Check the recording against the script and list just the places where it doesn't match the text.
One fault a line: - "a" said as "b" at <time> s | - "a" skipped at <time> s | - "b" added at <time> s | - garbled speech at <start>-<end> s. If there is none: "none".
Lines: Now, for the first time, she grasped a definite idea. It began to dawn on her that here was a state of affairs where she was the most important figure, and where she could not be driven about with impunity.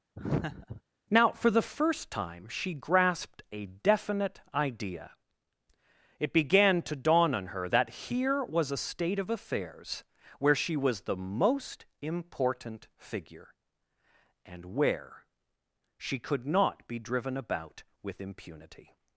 none